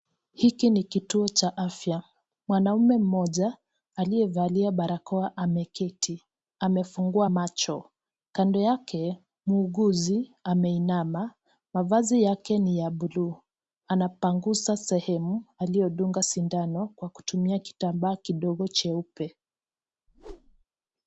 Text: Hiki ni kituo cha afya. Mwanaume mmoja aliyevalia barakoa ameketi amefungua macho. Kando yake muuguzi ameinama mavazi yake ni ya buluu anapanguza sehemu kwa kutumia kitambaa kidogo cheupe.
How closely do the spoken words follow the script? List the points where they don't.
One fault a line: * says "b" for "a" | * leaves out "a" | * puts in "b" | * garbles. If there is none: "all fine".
* puts in "aliyodunga sindano"